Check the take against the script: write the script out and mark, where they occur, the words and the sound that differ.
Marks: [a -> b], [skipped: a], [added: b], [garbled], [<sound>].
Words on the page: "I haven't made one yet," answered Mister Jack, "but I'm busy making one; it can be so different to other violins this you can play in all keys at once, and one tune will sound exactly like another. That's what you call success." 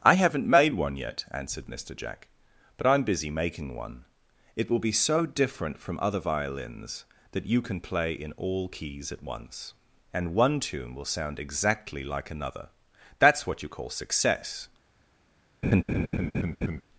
"I haven't made one yet," answered Mister Jack, "but I'm busy making one; it [can -> will] be so different [to -> from] other violins [this -> that] you can play in all keys at once, and one tune will sound exactly like another. That's what you call success." [laugh]